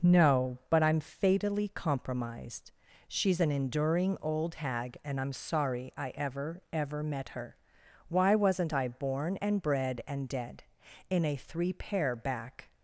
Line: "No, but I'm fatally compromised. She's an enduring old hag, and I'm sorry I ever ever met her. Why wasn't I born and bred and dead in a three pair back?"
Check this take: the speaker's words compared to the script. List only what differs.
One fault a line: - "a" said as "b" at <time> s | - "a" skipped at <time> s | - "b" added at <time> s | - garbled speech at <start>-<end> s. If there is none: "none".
none